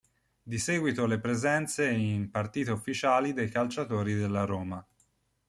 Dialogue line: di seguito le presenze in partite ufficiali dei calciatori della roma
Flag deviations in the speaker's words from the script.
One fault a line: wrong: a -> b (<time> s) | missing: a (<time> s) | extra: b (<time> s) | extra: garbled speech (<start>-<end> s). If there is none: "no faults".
no faults